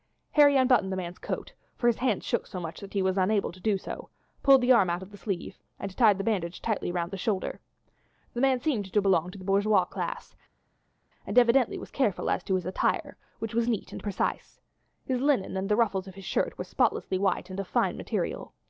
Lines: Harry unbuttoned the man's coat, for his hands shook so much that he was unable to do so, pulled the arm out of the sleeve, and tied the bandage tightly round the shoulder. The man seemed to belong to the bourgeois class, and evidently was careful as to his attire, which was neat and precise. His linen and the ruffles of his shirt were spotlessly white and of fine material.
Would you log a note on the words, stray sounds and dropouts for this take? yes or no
no